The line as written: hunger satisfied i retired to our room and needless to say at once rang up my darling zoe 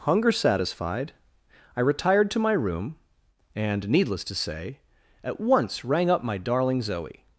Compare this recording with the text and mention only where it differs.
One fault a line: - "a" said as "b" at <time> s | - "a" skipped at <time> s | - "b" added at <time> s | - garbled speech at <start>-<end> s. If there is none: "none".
- "our" said as "my" at 2.4 s